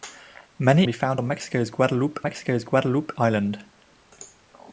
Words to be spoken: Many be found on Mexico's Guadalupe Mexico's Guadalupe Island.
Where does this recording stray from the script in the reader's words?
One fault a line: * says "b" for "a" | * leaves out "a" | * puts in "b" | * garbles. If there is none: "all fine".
all fine